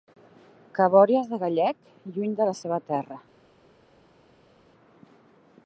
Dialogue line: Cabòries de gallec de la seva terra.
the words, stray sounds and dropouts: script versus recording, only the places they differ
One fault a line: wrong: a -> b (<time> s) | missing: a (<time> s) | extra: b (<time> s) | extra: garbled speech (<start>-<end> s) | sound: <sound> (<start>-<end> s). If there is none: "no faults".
extra: lluny (2.1 s)